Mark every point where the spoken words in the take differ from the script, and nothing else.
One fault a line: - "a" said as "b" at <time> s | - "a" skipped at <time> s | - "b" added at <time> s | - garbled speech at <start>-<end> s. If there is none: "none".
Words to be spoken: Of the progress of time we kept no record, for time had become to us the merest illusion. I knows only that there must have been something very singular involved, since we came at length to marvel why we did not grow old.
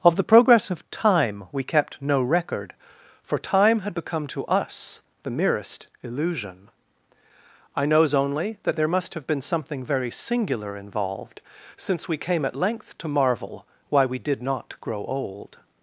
none